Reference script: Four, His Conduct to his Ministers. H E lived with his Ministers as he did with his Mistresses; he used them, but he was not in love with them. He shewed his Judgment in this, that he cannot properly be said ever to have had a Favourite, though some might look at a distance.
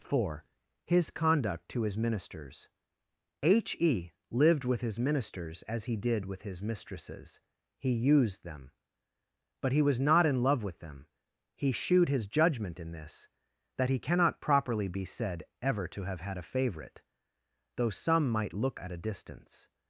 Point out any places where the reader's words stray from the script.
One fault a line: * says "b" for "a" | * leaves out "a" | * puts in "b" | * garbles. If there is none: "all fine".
all fine